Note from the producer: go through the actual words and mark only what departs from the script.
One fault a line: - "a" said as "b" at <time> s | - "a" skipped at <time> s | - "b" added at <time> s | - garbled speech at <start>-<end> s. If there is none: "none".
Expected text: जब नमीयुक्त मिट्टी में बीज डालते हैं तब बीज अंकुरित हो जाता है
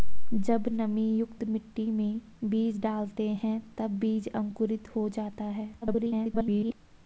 - garbled speech at 5.8-6.7 s